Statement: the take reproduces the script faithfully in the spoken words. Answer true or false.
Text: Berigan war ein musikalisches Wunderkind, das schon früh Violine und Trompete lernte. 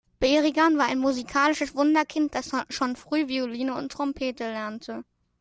true